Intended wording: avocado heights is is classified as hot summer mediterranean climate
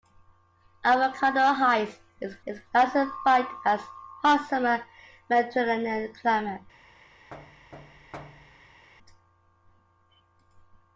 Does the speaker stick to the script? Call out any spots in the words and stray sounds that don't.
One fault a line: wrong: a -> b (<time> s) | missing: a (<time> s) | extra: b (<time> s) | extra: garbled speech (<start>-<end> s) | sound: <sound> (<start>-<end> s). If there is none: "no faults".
sound: thud (7.3-8.9 s)